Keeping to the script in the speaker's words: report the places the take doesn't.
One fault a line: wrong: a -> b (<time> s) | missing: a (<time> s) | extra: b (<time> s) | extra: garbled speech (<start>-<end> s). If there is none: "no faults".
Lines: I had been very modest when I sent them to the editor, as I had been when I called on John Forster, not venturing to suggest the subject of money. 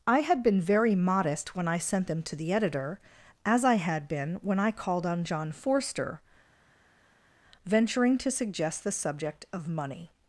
missing: not (6.2 s)